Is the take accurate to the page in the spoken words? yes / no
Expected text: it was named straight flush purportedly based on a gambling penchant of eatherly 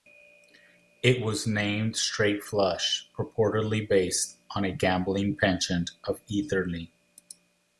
yes